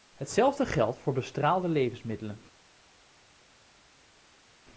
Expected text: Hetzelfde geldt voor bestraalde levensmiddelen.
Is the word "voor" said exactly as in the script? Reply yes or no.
yes